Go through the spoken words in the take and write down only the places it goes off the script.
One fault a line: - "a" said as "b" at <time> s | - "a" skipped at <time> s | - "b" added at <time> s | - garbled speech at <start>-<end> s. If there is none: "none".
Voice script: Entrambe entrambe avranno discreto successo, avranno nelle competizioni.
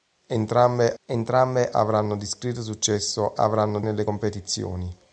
none